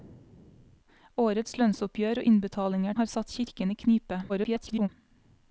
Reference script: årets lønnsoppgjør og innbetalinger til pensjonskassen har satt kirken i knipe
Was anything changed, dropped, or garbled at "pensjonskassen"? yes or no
yes